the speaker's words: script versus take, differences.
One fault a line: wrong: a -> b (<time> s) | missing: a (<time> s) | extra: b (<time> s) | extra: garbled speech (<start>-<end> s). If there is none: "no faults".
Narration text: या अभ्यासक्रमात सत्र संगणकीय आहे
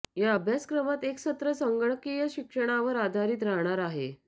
extra: एक (1.0 s)
extra: शिक्षणावर आधारित राहणार (2.3 s)